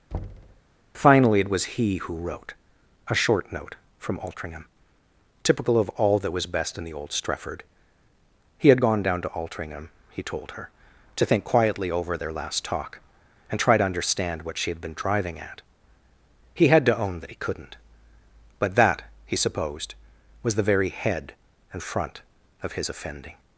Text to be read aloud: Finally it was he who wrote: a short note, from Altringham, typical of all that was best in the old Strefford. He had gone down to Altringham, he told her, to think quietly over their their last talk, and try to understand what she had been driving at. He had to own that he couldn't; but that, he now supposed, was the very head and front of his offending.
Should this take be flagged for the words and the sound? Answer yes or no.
yes